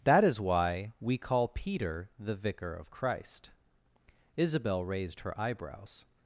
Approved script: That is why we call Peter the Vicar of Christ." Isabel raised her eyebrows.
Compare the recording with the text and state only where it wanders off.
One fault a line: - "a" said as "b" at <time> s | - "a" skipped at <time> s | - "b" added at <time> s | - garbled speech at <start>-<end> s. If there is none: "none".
none